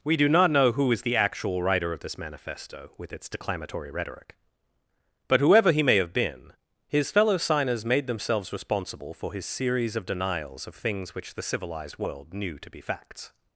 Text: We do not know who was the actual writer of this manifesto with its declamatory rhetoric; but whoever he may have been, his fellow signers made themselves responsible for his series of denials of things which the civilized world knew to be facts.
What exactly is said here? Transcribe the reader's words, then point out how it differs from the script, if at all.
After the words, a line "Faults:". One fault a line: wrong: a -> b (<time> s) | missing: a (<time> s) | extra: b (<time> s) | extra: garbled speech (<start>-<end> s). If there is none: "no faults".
We do not know who is the actual writer of this manifesto with its declamatory rhetoric; but whoever he may have been, his fellow signers made themselves responsible for his series of denials of things which the civilized world knew to be facts.
Faults:
wrong: was -> is (0.9 s)